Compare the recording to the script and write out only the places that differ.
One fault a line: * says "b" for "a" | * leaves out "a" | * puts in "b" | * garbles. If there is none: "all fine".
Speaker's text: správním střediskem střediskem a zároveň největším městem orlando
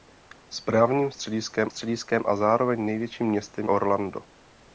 all fine